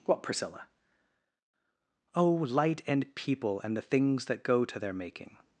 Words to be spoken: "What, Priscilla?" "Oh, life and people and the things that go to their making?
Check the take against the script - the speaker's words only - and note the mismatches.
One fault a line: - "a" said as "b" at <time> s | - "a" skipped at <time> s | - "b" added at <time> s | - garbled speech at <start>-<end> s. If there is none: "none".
- "life" said as "light" at 2.3 s